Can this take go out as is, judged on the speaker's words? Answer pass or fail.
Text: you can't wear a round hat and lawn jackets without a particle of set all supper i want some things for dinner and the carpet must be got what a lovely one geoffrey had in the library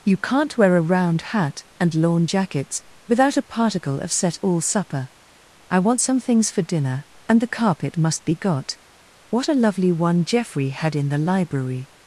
pass